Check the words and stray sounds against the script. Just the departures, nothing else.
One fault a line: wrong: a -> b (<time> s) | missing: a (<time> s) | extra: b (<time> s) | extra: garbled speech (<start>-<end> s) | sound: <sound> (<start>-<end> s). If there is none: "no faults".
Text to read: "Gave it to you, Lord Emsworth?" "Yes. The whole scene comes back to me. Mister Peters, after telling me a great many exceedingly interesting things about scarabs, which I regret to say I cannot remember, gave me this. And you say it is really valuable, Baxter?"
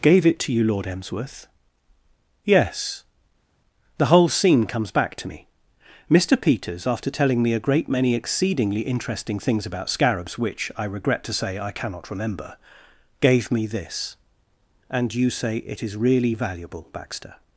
no faults